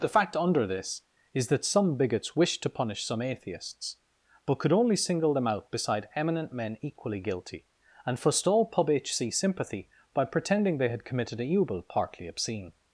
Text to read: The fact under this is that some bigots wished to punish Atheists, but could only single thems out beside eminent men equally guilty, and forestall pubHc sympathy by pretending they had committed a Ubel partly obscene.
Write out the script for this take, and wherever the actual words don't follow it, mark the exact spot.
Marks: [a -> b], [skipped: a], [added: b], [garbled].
The fact under this is that some bigots wished to punish [added: some] Atheists, but could only single [thems -> them] out beside eminent men equally guilty, and forestall pubHc sympathy by pretending they had committed a Ubel partly obscene.